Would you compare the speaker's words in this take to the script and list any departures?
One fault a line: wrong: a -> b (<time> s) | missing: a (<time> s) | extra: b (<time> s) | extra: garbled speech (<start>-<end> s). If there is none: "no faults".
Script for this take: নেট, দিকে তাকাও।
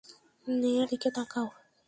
no faults